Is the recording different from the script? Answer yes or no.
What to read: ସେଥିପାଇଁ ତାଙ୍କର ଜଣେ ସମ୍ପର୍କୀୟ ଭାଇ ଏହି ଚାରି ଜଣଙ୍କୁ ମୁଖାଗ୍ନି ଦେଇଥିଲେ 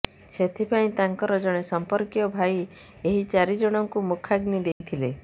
no